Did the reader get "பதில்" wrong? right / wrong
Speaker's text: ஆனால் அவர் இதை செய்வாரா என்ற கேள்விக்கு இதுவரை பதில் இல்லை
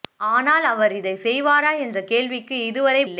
wrong